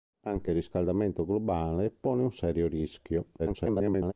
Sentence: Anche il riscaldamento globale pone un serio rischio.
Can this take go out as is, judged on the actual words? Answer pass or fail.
fail